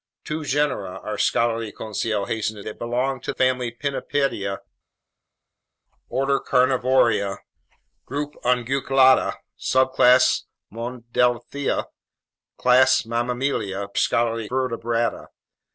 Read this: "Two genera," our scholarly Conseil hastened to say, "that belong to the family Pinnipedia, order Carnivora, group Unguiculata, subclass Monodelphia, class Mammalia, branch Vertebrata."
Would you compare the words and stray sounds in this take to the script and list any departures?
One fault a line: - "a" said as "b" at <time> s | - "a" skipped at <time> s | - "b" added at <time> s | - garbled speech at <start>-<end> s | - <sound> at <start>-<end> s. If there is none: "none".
- "say" skipped at 2.6 s
- "the" skipped at 3.3 s
- "branch" said as "scholarly" at 14.0 s